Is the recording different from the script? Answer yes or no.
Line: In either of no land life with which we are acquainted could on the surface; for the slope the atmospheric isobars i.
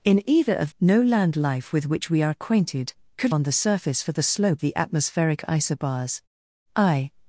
no